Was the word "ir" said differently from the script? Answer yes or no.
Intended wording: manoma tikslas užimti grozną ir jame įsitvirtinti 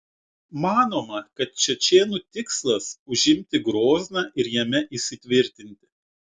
no